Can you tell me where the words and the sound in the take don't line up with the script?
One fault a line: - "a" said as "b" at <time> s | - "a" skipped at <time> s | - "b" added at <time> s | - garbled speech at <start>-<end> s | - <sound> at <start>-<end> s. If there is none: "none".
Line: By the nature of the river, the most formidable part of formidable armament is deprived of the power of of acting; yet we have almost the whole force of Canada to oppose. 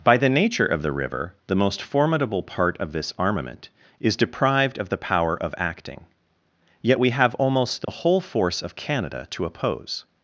- "formidable" said as "this" at 2.9 s
- "of" skipped at 5.5 s
- dropout at 7.8-7.9 s